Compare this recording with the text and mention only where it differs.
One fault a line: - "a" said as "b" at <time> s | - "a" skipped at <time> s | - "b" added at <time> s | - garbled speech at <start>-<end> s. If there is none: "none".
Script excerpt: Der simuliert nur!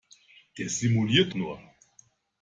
none